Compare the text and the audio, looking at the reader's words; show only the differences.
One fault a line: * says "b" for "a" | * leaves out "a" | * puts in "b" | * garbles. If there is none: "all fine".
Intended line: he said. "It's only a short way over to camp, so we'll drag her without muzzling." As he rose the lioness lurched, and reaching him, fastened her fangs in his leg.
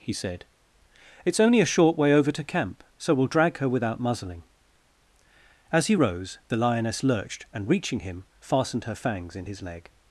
all fine